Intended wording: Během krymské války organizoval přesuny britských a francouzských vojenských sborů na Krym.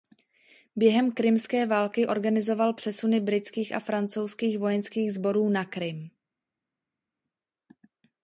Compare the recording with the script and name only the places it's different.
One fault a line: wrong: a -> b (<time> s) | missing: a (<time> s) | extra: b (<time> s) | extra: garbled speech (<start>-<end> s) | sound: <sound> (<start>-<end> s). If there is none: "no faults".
no faults